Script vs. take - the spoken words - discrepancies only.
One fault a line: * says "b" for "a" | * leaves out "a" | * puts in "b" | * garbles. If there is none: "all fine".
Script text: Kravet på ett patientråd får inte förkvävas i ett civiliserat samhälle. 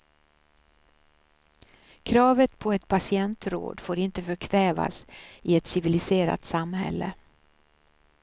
all fine